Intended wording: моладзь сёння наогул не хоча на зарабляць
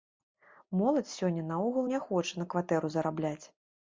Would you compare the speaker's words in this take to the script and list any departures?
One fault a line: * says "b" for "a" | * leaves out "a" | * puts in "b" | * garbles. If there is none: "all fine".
* puts in "кватэру"